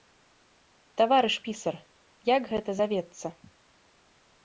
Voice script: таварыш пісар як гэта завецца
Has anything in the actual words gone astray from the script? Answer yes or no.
no